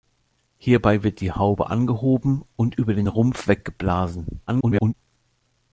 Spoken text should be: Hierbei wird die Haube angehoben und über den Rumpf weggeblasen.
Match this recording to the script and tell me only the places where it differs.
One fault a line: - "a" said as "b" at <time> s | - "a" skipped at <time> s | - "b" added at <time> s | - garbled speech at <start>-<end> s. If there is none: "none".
- garbled speech at 4.5-4.9 s